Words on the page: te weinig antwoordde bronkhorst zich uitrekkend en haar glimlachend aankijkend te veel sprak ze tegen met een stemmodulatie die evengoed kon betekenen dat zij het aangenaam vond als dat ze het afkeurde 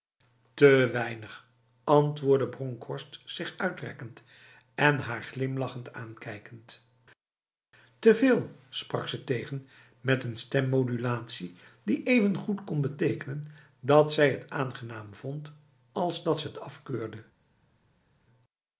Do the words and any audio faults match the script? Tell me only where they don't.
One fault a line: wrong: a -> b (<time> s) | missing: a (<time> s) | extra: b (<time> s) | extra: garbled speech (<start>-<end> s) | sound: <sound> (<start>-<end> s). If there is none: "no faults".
no faults